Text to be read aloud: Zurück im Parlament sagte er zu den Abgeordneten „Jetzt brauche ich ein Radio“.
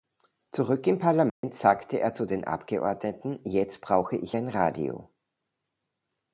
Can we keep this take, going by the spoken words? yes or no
yes